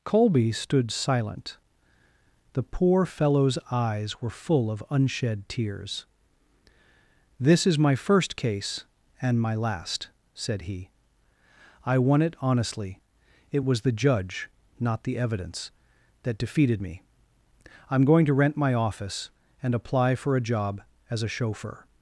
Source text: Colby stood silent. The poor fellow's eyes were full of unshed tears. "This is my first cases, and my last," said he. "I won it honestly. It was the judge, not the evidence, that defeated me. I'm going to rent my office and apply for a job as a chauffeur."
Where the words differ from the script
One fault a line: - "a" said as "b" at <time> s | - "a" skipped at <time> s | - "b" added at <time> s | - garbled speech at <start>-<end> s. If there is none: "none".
- "cases" said as "case" at 8.3 s